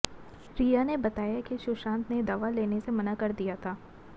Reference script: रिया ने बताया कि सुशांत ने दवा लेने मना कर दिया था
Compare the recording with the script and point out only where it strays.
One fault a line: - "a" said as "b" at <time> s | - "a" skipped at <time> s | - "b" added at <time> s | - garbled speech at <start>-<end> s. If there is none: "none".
- "से" added at 2.8 s